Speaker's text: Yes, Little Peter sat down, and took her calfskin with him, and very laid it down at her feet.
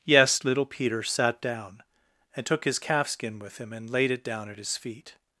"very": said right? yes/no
no